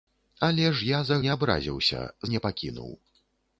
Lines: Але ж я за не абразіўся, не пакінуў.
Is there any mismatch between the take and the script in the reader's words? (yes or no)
no